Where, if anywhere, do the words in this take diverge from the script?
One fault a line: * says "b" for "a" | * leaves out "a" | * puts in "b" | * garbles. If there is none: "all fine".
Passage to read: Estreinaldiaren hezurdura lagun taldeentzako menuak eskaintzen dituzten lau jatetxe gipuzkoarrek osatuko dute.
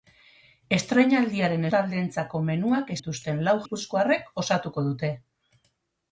* leaves out "hezurdura lagun"
* leaves out "eskaintzen"
* leaves out "jatetxe"